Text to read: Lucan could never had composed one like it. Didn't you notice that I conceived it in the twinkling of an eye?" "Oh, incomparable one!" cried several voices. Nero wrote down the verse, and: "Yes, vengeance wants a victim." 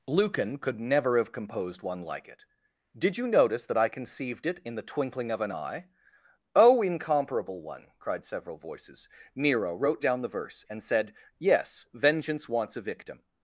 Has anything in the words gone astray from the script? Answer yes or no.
yes